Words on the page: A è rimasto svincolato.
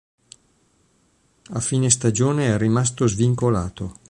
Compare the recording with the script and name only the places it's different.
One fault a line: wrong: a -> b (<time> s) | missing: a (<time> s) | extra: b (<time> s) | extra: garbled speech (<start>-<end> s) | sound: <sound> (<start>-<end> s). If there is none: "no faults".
extra: fine stagione (1.6 s)